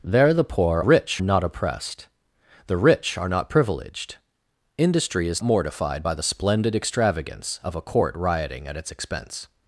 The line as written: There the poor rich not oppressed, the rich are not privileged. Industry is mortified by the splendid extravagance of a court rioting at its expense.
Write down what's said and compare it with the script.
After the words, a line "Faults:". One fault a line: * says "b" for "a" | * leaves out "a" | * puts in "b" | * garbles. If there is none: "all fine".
There the poor rich not oppressed, the rich are not privileged. Industry is mortified by the splendid extravagance of a court rioting at its expense.
Faults:
all fine